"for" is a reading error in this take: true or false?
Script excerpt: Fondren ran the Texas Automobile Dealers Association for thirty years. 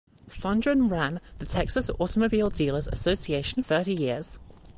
true